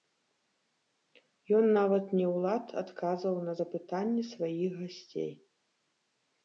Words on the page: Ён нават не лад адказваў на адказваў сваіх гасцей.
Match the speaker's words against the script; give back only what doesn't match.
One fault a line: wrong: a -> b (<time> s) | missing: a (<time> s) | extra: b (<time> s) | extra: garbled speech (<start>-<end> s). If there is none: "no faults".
extra: ў (2.3 s)
wrong: адказваў -> запытанні (3.6 s)